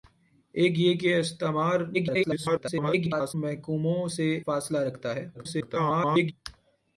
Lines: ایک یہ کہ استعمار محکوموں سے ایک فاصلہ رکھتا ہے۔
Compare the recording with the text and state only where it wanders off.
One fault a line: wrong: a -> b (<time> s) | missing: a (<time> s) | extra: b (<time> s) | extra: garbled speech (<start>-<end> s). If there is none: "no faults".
extra: garbled speech (1.9-3.3 s)
missing: ایک (4.3 s)
extra: garbled speech (5.3-6.3 s)